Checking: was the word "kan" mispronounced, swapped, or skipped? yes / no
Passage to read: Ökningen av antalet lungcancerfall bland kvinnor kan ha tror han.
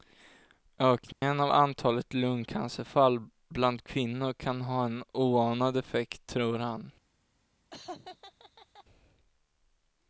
no